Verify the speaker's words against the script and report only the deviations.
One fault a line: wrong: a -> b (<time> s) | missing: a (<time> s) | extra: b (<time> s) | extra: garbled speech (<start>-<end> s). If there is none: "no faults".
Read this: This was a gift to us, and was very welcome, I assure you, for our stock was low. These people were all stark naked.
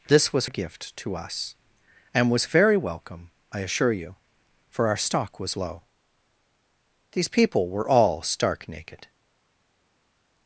no faults